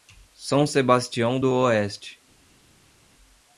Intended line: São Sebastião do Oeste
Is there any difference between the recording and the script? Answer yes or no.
no